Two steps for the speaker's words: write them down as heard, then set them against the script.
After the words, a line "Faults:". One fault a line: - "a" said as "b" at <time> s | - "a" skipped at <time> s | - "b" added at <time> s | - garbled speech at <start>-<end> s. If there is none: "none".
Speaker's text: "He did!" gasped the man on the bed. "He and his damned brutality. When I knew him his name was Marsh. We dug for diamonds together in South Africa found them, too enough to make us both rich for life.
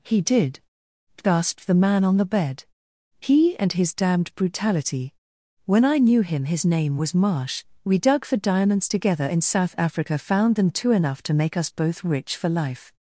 "He did!" gasped the man on the bed. "He and his damned brutality. When I knew him his name was Marsh. We dug for diamonds together in South Africa found them, too enough to make us both rich for life.
Faults:
none